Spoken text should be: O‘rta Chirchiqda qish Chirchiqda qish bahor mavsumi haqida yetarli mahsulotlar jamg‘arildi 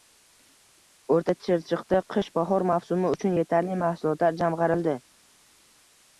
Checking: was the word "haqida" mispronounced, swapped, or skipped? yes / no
yes